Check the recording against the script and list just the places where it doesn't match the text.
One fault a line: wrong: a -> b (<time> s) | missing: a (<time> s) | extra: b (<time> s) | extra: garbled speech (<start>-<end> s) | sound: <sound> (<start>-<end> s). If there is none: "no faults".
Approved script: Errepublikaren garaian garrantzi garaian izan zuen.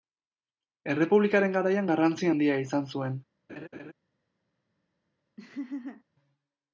wrong: garaian -> handia (2.3 s)
sound: laugh (3.5-3.9 s)
sound: laugh (5.4-6.0 s)